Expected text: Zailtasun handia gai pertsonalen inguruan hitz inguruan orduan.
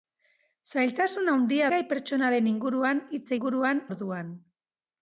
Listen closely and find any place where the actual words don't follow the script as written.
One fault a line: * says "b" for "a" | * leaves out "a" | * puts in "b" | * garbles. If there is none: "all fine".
all fine